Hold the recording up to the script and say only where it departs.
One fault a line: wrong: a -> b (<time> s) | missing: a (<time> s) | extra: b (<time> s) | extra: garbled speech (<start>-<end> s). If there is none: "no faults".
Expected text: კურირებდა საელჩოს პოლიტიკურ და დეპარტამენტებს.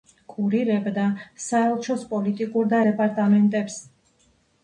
no faults